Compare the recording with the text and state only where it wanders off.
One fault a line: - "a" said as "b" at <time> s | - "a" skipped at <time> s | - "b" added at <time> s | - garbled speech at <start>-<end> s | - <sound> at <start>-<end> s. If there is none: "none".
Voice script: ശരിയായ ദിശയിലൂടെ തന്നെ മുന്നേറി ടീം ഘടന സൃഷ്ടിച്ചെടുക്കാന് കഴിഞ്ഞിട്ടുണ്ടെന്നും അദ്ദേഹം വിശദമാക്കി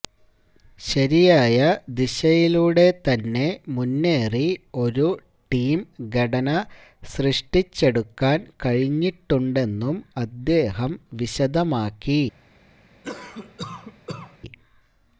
- "ഒരു" added at 4.8 s
- cough at 13.0-14.4 s